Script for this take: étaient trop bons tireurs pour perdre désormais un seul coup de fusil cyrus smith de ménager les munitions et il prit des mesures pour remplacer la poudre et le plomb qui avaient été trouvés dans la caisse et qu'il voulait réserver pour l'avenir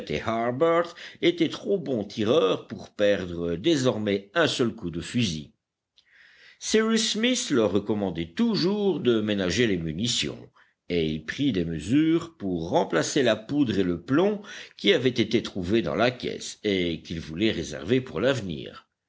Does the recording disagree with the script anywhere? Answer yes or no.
yes